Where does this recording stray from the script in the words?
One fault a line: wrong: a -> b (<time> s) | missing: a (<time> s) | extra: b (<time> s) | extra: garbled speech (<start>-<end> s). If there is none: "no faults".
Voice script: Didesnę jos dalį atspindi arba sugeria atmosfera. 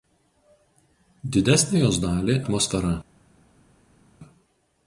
missing: atspindi arba sugeria (2.4 s)